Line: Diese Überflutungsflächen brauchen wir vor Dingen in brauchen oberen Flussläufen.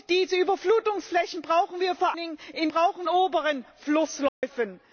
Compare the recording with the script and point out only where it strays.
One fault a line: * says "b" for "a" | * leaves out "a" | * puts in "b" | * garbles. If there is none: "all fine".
all fine